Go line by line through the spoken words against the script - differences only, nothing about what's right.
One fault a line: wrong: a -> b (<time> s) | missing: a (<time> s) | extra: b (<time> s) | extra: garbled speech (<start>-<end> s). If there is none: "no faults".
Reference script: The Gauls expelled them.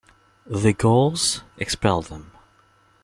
no faults